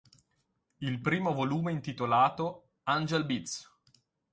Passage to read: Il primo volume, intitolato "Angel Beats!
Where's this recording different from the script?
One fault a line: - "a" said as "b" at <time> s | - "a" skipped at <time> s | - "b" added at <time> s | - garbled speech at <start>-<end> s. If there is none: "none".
none